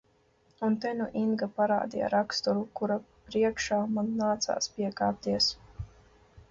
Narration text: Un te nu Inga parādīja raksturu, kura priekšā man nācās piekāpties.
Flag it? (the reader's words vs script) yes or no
no